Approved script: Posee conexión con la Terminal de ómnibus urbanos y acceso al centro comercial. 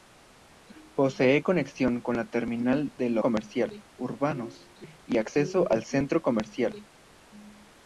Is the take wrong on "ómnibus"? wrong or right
wrong